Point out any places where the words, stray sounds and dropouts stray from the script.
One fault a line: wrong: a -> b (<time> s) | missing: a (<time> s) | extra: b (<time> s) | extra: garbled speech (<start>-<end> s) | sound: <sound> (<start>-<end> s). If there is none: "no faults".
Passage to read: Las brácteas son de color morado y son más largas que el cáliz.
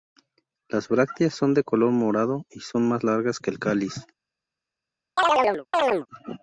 sound: chirp (5.2-6.1 s)